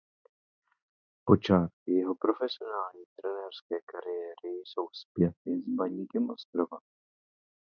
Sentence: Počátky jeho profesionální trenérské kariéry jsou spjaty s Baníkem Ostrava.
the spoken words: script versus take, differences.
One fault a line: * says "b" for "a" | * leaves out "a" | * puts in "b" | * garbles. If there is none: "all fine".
all fine